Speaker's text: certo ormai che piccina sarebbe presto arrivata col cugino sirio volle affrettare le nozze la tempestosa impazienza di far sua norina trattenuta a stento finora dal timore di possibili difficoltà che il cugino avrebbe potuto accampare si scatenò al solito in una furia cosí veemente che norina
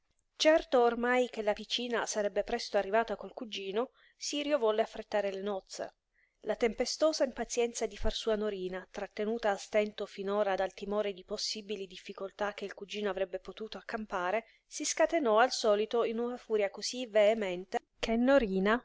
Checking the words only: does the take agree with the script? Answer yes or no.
no